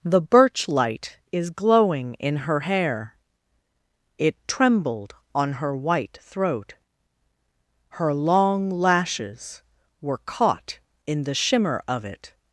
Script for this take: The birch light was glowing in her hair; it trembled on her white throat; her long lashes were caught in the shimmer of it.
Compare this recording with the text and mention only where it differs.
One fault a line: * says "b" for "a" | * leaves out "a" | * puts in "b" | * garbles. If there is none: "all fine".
* says "is" for "was"